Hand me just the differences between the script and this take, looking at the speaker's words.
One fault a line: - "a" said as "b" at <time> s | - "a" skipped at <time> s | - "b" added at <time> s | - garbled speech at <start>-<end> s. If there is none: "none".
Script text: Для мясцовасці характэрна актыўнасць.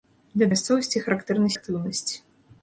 none